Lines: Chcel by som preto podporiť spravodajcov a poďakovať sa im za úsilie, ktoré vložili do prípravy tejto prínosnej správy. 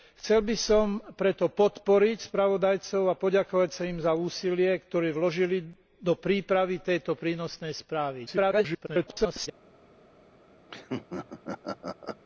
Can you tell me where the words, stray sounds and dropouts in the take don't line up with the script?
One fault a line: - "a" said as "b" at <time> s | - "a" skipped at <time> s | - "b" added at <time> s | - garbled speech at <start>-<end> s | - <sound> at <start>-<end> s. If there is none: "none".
- garbled speech at 8.3-9.5 s
- laugh at 10.7-12.2 s